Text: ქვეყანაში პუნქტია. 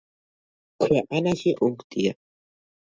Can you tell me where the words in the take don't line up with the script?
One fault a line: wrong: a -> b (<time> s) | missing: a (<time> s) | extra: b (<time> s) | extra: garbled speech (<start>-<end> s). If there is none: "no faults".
no faults